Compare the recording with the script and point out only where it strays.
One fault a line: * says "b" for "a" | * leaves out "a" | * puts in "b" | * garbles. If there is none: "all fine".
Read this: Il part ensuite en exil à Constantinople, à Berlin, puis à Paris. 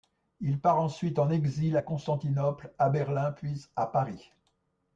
all fine